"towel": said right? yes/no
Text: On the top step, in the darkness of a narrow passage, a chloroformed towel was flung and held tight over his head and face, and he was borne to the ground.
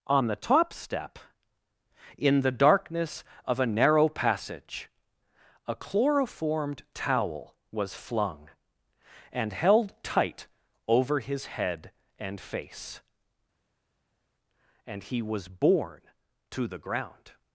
yes